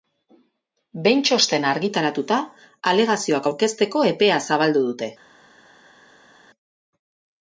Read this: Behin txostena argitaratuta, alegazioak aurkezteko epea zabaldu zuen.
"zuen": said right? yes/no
no